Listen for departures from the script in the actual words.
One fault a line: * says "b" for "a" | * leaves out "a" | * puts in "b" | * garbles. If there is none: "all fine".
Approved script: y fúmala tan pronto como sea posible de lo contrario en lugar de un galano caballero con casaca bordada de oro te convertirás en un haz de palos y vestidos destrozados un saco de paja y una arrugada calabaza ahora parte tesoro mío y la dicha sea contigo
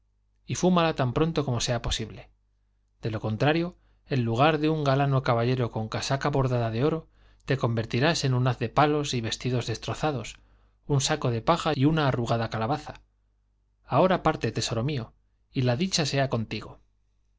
all fine